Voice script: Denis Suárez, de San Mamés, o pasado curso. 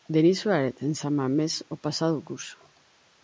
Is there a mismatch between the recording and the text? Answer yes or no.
yes